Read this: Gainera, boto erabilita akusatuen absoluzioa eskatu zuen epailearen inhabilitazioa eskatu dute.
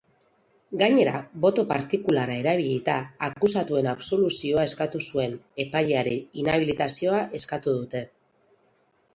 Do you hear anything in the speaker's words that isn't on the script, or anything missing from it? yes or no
yes